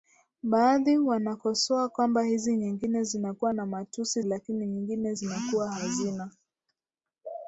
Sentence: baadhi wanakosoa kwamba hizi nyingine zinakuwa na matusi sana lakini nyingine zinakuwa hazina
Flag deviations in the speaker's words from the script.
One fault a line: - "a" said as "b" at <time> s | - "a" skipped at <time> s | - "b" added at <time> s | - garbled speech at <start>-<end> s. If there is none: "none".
- "sana" skipped at 4.2 s